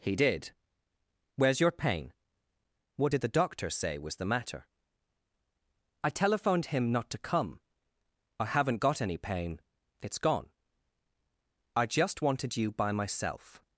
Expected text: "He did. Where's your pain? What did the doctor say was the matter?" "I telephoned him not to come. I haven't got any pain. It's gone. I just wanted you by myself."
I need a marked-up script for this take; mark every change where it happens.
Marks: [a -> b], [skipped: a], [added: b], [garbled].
"He did. Where's your pain? What did the doctor say was the matter?" "I telephoned him not to come. I haven't got any pain. It's gone. I just wanted you by myself."